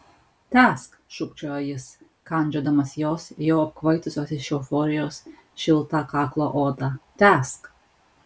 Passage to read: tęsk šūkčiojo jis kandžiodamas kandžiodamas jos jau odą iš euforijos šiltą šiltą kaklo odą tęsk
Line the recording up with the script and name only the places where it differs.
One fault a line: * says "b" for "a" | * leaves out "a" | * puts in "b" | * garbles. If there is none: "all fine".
* leaves out "kandžiodamas"
* says "apkvaitusios" for "odą"
* leaves out "šiltą"